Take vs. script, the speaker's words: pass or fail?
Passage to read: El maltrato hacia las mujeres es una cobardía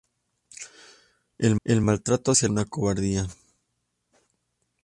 fail